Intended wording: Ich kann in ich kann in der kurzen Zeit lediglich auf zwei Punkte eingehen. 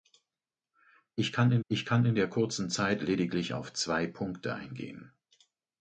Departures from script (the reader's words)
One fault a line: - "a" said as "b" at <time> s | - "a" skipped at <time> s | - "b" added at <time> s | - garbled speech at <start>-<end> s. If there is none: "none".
none